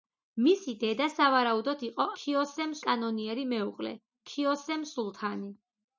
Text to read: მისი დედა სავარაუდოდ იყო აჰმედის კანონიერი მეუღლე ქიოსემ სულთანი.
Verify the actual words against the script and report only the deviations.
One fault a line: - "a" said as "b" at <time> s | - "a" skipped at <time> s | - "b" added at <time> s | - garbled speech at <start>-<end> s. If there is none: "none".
- "აჰმედის" said as "ქიოსემ" at 2.2 s